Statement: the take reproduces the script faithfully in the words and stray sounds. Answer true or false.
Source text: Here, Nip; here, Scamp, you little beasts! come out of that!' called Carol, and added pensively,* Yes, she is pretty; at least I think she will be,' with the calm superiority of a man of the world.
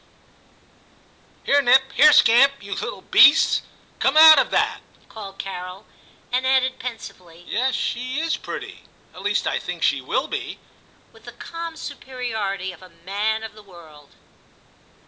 true